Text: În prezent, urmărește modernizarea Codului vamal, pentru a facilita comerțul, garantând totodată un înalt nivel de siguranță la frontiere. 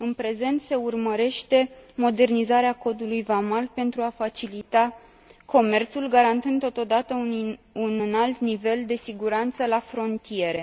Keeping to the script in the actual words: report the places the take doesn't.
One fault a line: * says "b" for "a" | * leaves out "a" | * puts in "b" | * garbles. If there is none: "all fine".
* puts in "se"